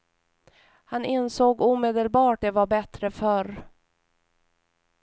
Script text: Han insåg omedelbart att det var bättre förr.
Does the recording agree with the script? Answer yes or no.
no